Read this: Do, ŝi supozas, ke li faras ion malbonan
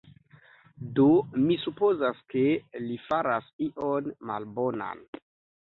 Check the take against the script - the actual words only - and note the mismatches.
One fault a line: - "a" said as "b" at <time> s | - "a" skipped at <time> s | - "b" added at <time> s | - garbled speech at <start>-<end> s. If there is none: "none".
- "ŝi" said as "mi" at 1.4 s